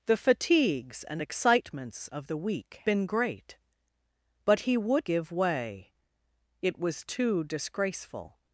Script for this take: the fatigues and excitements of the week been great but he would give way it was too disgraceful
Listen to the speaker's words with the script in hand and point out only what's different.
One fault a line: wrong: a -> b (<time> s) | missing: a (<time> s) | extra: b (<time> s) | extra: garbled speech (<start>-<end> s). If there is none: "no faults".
no faults